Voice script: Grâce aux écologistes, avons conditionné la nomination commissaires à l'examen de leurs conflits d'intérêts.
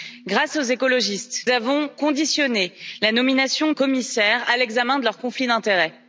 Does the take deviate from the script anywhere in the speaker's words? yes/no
no